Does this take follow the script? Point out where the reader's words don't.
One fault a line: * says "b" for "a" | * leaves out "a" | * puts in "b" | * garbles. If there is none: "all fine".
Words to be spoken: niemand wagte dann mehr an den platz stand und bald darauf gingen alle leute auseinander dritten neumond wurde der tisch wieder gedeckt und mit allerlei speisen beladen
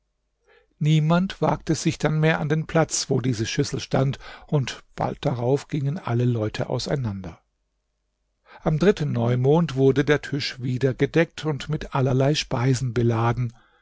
* puts in "sich"
* puts in "wo diese schüssel"
* puts in "am"